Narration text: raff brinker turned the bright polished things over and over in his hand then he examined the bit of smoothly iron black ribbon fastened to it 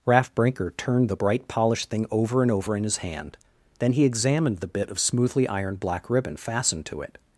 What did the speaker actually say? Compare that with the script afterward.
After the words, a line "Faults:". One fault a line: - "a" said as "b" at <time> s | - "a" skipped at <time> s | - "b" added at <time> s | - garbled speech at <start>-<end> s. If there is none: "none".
raff brinker turned the bright polished thing over and over in his hand then he examined the bit of smoothly ironed black ribbon fastened to it
Faults:
- "things" said as "thing" at 1.9 s
- "iron" said as "ironed" at 5.5 s